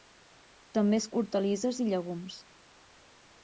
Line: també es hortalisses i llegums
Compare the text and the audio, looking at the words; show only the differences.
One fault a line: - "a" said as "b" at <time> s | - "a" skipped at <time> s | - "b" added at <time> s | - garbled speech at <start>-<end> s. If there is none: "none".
none